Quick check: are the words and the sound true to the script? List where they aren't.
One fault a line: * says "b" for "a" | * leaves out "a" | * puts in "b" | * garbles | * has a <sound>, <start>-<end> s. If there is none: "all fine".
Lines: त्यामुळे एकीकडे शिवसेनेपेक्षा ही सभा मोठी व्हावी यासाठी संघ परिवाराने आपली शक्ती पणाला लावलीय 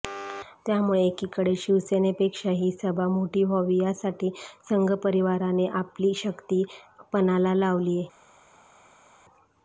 all fine